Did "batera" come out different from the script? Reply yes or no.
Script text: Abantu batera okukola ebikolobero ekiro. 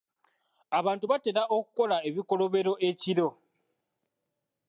no